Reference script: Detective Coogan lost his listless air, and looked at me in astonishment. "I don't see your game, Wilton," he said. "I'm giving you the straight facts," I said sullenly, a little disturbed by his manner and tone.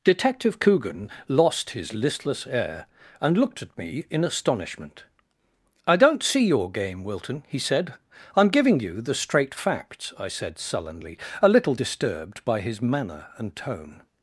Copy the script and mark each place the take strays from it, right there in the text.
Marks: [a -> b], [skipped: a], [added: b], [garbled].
Detective Coogan lost his listless air, and looked at me in astonishment. "I don't see your game, Wilton," he said. "I'm giving you the straight facts," I said sullenly, a little disturbed by his manner and tone.